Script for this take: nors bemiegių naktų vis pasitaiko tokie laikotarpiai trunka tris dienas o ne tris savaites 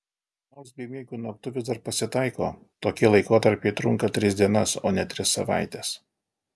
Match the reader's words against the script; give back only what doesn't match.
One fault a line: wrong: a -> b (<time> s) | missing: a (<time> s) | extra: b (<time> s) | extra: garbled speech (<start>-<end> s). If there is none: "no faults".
extra: dar (1.7 s)